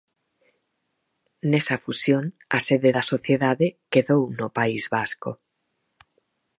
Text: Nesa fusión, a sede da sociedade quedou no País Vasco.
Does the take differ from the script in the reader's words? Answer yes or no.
no